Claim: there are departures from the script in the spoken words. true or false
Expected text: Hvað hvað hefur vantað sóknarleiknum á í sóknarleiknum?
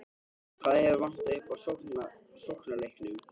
true